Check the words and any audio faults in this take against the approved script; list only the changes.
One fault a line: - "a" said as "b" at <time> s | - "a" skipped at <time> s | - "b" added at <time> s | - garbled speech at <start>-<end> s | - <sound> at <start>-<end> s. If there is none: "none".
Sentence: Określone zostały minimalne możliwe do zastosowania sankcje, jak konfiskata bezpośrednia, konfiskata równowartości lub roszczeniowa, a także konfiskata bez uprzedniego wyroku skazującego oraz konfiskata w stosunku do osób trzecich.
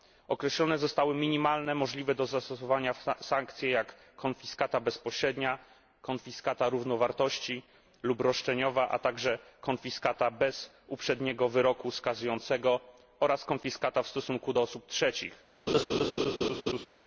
- laugh at 15.7-16.9 s